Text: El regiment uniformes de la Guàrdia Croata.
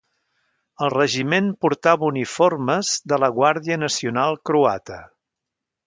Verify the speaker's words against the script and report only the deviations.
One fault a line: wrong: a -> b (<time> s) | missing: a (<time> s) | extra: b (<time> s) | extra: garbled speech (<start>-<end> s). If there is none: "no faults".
extra: portava (1.7 s)
extra: Nacional (3.9 s)